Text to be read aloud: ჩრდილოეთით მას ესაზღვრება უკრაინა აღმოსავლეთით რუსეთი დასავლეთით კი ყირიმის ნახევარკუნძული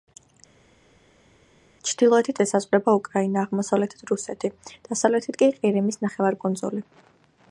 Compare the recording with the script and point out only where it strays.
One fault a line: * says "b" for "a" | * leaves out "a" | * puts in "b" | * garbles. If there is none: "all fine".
* leaves out "მას"